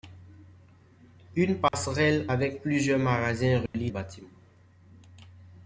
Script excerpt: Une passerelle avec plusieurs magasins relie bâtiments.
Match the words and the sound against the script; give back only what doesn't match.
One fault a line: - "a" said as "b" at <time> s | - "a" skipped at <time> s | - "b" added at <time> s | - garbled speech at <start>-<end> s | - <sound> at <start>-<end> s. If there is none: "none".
- dropout at 1.7-1.7 s
- dropout at 3.7-3.7 s